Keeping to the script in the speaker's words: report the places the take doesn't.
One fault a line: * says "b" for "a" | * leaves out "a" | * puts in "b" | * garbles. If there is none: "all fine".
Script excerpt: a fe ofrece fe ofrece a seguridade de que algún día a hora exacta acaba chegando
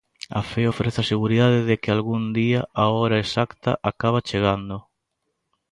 * leaves out "fe ofrece"